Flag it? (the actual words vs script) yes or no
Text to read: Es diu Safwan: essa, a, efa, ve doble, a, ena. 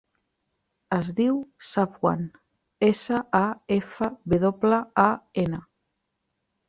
no